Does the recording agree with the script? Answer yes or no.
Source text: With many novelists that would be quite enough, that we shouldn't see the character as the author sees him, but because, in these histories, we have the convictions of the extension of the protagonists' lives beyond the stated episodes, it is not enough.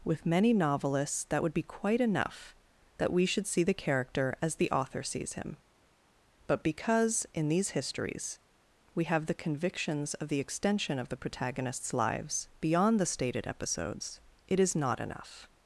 no